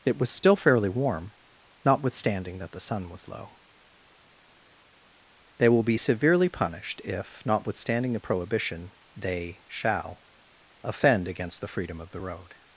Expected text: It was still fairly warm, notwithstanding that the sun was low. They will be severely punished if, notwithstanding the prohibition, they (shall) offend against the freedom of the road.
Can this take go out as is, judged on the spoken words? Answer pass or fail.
pass